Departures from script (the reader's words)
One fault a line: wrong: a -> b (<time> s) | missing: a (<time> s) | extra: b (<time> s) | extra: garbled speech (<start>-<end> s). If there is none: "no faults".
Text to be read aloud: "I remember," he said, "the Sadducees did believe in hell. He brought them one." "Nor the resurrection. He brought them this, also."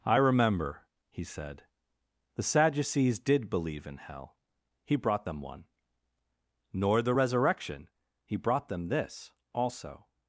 no faults